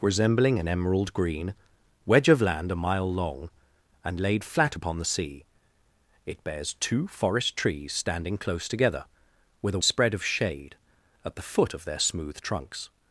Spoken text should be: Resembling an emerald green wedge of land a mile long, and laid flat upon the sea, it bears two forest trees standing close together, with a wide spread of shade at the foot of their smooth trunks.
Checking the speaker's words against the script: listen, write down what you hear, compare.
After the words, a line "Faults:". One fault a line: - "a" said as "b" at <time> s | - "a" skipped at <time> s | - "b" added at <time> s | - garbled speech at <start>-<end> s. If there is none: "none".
Resembling an emerald green wedge of land a mile long, and laid flat upon the sea, it bears two forest trees standing close together, with a spread of shade at the foot of their smooth trunks.
Faults:
- "wide" skipped at 9.8 s